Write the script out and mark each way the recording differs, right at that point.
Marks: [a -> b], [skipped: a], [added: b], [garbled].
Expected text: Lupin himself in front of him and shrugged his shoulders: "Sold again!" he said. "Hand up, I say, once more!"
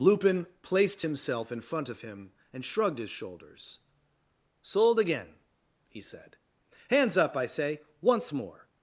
Lupin [added: placed] himself in front of him and shrugged his shoulders: "Sold again!" he said. ["Hand -> Hands] up, I say, once more!"